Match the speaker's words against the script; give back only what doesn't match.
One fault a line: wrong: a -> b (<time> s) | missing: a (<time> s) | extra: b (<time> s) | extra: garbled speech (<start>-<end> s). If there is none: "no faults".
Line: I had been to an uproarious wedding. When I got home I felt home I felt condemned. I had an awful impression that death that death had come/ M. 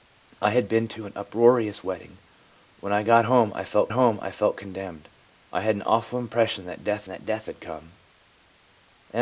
no faults